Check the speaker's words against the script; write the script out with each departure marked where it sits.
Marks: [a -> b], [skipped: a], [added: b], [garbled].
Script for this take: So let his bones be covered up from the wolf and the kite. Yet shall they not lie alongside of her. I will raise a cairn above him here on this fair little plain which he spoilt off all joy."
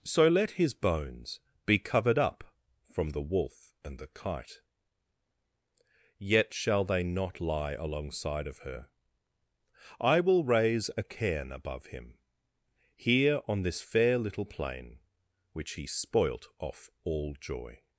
So let his bones be covered up from the wolf and the kite. Yet shall they not lie alongside of her. I will raise a cairn above him here on this fair little plain which he spoilt off all joy."